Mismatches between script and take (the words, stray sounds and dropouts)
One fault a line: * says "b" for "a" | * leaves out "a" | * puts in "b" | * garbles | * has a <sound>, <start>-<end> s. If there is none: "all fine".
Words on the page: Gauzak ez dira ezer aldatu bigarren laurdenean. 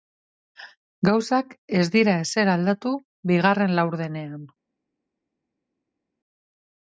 all fine